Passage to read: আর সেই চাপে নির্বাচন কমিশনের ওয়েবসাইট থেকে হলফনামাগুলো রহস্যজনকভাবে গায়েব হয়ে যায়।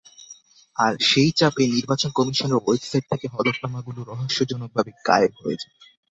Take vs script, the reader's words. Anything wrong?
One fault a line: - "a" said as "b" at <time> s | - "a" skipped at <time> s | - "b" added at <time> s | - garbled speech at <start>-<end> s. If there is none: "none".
none